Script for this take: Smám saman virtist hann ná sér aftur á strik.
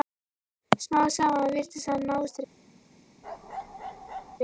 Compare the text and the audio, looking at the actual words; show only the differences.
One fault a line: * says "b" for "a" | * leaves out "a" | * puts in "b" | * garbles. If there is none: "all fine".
* leaves out "sér aftur"